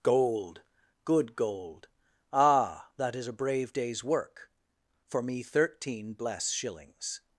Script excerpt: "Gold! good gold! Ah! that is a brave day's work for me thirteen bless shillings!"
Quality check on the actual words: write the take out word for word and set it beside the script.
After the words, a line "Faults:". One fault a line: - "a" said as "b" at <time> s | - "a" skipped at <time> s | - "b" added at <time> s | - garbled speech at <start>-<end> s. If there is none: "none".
"Gold! good gold! Ah! that is a brave day's work for me thirteen bless shillings!"
Faults:
none